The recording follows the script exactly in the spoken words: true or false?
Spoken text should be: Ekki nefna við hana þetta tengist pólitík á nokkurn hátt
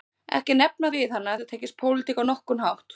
true